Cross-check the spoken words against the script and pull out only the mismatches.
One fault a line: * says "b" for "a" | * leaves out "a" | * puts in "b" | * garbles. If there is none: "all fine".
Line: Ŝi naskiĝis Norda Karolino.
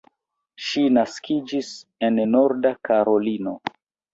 * puts in "en"